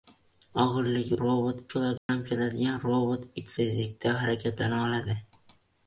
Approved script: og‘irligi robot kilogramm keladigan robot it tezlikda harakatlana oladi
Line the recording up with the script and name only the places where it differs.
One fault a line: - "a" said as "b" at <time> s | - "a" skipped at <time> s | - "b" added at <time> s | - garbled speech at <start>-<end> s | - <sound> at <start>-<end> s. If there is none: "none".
- dropout at 2.0-2.1 s